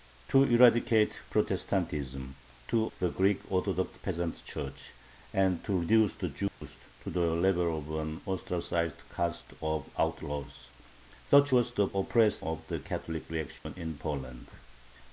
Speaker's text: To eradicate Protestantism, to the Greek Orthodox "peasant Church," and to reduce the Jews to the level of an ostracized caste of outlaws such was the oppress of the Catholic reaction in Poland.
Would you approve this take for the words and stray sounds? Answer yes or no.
no